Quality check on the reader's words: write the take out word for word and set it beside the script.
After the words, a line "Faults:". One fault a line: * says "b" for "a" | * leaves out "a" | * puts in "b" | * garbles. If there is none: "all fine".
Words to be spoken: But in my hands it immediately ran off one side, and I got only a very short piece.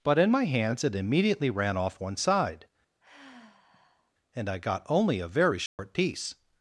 But in my hands it immediately ran off one side, and I got only a very short piece.
Faults:
all fine